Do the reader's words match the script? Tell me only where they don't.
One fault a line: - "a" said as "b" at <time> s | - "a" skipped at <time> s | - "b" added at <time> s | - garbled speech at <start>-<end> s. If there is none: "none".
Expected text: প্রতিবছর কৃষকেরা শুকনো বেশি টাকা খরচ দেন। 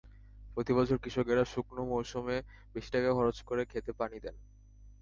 - "মৌসুমে" added at 1.9 s
- "করে খেতে পানি" added at 3.4 s